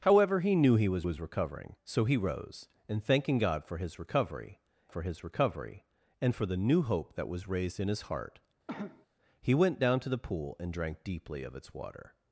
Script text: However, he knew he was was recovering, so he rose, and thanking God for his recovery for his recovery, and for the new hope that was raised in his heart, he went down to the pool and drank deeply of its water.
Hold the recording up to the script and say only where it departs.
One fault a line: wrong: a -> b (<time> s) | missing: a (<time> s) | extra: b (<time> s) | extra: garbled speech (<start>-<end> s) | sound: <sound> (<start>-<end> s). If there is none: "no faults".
sound: cough (8.7-9.1 s)